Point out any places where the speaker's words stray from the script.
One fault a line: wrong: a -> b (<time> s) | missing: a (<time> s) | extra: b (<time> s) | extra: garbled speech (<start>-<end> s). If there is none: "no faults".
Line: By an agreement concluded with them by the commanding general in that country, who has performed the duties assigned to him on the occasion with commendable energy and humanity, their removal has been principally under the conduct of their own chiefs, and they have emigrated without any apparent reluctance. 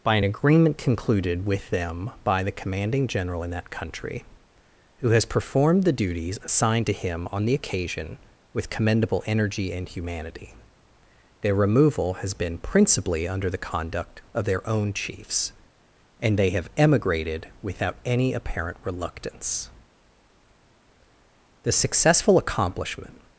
extra: The successful accomplishment (21.6 s)